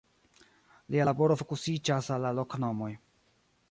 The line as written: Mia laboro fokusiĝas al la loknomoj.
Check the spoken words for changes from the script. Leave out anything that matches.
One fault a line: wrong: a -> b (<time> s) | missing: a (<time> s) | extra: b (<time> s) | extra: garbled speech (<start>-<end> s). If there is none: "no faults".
wrong: Mia -> Lia (0.9 s)